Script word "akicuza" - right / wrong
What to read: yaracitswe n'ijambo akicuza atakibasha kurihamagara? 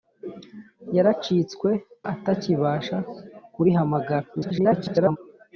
wrong